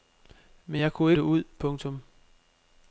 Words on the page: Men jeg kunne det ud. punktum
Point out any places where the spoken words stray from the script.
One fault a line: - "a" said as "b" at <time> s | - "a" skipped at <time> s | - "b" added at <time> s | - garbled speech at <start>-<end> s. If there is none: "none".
none